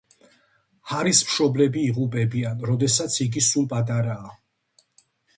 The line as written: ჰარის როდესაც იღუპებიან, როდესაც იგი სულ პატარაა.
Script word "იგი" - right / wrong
right